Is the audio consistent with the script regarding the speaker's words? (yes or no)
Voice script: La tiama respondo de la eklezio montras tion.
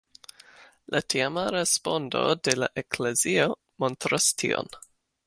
yes